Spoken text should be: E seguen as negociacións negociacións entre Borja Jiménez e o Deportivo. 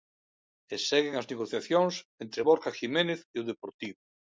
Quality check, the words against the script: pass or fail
fail